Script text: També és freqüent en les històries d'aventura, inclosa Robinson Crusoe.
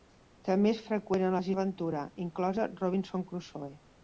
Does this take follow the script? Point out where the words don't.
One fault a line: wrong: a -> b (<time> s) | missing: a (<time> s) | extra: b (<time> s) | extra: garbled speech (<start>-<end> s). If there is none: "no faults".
missing: històries (1.5 s)